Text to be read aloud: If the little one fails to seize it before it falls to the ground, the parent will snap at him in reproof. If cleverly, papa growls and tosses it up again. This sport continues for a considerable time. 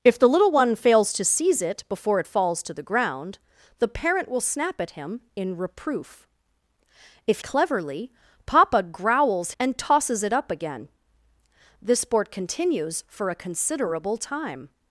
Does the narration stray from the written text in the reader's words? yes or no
no